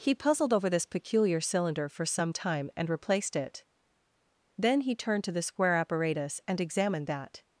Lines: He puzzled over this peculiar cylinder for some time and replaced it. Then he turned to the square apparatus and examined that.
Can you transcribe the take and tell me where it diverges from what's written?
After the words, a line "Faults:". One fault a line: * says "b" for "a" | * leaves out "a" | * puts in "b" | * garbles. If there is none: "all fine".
He puzzled over this peculiar cylinder for some time and replaced it. Then he turned to the square apparatus and examined that.
Faults:
all fine